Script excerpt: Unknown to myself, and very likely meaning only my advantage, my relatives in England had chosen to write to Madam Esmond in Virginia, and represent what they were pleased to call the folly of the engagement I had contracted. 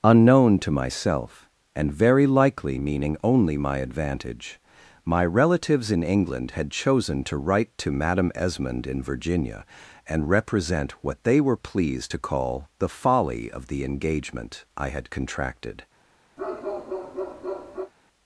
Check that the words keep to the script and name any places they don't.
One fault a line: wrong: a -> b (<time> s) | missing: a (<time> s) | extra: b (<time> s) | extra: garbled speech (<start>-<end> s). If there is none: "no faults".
no faults